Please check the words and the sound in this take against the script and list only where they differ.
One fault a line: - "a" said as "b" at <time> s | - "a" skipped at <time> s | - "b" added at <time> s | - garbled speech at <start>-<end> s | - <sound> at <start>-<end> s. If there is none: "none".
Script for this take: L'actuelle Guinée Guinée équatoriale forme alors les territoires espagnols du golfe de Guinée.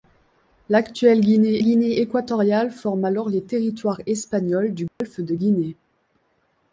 - dropout at 4.9-5.0 s